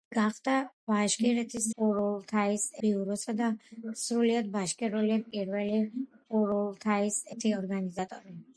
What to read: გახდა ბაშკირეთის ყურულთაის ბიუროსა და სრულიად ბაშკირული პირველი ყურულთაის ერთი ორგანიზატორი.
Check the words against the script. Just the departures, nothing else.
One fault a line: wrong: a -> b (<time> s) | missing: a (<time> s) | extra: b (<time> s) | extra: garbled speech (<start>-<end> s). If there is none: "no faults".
no faults